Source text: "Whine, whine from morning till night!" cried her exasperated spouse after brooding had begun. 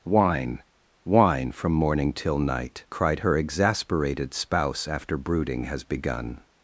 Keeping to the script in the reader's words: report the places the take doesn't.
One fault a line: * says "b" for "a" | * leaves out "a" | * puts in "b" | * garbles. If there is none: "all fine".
* says "has" for "had"